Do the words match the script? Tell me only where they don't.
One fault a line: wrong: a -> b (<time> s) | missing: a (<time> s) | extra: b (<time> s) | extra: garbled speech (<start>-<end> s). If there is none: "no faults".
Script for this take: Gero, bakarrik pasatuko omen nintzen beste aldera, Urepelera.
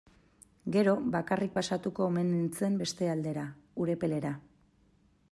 no faults